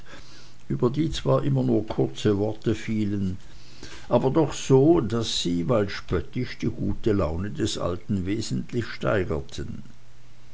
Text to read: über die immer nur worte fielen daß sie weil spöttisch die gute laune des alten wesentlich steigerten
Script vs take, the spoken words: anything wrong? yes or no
yes